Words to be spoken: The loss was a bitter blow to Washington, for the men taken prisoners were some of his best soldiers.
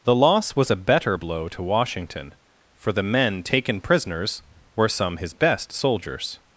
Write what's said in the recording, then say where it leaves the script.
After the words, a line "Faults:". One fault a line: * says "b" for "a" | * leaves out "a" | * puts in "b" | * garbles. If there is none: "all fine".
The loss was a better blow to Washington, for the men taken prisoners were some his best soldiers.
Faults:
* says "better" for "bitter"
* leaves out "of"